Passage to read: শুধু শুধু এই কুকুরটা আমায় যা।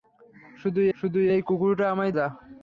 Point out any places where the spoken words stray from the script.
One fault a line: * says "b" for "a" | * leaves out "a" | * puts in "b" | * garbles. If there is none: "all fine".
all fine